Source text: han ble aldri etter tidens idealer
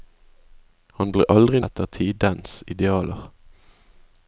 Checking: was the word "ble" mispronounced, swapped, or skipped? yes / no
no